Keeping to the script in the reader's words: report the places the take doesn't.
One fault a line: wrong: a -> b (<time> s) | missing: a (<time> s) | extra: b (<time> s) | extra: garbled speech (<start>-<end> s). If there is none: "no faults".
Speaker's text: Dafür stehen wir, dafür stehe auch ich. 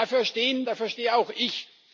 missing: wir (0.7 s)